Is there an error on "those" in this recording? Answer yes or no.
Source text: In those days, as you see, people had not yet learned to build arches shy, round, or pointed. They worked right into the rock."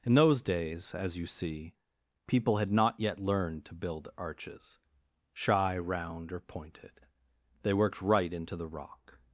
no